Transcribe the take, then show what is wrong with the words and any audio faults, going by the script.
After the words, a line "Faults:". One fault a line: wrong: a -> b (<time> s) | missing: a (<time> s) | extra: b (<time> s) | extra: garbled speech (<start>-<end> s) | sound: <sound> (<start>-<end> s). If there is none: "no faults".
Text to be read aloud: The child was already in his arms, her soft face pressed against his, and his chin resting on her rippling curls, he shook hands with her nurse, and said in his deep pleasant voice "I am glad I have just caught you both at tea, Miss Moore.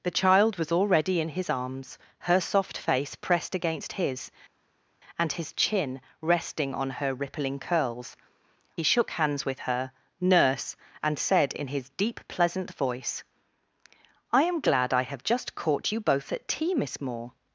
The child was already in his arms, her soft face pressed against his, and his chin resting on her rippling curls, he shook hands with her nurse, and said in his deep pleasant voice "I am glad I have just caught you both at tea, Miss Moore.
Faults:
no faults